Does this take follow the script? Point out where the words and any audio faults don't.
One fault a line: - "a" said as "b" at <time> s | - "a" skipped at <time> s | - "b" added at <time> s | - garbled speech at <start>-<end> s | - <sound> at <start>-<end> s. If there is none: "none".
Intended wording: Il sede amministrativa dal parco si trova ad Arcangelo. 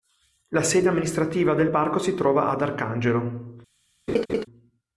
- "Il" said as "La" at 0.5 s
- "dal" said as "del" at 1.5 s
- laugh at 4.1-4.5 s